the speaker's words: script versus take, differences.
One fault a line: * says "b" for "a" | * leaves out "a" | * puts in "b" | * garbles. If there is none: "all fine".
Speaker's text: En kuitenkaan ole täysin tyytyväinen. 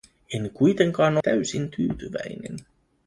* leaves out "ole"